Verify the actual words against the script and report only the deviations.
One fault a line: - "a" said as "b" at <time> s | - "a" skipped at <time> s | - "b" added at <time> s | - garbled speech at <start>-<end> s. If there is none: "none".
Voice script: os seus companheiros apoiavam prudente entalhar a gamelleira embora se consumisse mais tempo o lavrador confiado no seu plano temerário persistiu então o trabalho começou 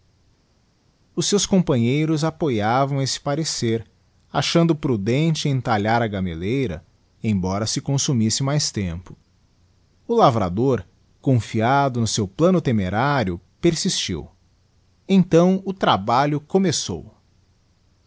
- "esse parecer achando" added at 3.0 s